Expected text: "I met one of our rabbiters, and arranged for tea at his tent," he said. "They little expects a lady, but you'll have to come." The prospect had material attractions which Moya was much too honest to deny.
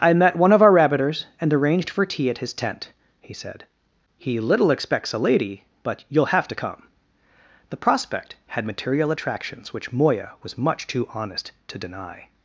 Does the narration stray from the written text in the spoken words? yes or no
yes